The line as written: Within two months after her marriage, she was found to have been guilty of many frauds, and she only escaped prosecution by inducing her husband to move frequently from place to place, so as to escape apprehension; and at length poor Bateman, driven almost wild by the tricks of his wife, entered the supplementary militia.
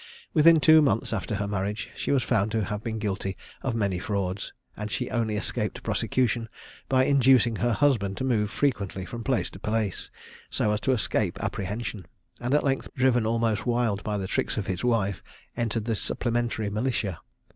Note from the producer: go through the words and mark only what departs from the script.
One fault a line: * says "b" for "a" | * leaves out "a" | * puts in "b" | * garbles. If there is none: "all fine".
* leaves out "poor Bateman"